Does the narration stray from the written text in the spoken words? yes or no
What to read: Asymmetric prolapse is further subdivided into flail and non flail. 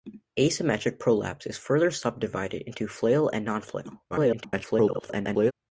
yes